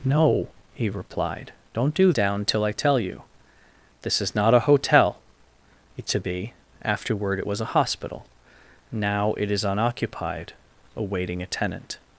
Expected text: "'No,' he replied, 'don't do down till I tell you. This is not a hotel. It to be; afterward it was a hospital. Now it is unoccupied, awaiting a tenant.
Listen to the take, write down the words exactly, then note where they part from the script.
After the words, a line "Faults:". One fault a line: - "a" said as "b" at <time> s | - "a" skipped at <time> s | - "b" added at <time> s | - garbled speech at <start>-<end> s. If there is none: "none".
"'No,' he replied, 'don't do down till I tell you. This is not a hotel. It to be; afterward it was a hospital. Now it is unoccupied, awaiting a tenant.
Faults:
none